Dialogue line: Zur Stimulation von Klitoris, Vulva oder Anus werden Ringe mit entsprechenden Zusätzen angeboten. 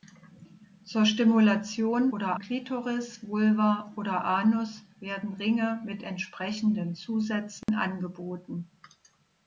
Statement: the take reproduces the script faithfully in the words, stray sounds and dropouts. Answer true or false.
false